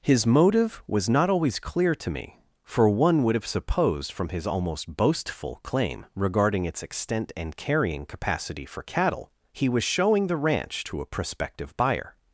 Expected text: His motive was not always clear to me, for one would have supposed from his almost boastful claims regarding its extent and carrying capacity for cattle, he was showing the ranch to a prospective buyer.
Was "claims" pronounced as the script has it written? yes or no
no